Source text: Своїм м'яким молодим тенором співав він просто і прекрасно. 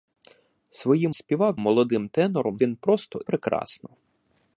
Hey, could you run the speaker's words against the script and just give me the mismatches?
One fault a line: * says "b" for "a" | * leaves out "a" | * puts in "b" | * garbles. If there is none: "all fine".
* says "співав" for "м'яким"
* leaves out "співав"
* leaves out "і"